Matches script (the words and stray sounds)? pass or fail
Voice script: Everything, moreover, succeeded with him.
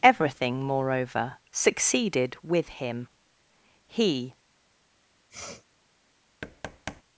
fail